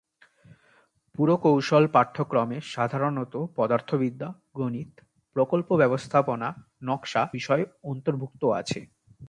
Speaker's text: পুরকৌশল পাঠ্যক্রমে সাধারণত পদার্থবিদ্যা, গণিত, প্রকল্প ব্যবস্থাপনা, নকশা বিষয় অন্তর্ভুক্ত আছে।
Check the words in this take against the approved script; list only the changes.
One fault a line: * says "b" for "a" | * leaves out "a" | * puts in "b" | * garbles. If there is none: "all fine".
all fine